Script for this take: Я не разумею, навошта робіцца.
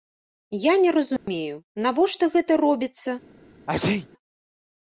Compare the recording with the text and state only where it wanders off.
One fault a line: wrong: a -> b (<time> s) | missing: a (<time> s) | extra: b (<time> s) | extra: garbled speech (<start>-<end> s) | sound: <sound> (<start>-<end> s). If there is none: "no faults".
sound: dropout (1.2-1.3 s)
extra: гэта (2.4 s)
sound: sneeze (3.7-4.1 s)